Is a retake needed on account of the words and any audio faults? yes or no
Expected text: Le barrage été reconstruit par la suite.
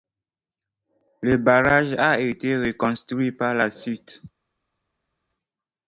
yes